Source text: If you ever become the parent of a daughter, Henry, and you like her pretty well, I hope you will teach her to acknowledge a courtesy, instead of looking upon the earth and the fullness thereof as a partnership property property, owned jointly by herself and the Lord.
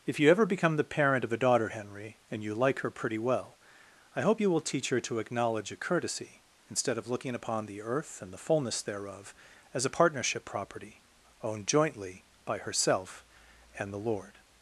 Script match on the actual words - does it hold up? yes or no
no